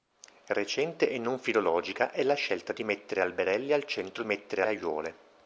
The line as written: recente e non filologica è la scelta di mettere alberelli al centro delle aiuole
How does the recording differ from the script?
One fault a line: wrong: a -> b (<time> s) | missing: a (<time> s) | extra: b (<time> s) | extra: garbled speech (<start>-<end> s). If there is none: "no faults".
wrong: delle -> mettere (4.2 s)